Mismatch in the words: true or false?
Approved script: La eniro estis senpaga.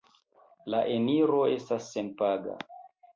true